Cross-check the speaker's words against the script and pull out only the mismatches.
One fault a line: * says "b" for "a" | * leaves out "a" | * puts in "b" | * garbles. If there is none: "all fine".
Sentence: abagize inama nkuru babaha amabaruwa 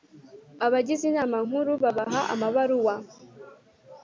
all fine